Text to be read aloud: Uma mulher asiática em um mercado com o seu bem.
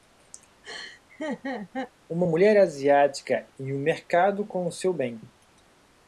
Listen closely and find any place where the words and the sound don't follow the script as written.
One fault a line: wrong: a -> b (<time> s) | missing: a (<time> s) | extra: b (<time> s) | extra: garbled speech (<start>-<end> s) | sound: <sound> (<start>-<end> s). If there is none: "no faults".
sound: laugh (0.6-1.9 s)